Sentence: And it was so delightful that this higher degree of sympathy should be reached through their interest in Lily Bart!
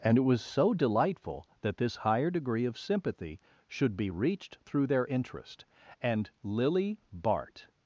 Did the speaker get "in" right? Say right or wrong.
wrong